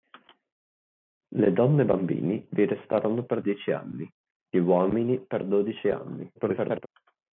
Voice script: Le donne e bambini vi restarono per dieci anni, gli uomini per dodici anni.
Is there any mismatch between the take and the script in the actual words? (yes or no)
yes